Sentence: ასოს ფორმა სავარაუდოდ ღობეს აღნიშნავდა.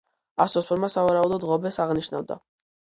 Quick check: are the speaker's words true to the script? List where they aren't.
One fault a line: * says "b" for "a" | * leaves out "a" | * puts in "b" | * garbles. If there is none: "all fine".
all fine